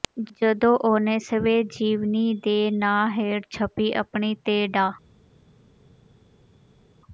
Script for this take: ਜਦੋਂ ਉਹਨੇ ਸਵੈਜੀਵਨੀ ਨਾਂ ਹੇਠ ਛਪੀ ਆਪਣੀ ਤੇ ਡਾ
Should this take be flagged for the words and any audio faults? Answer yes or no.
yes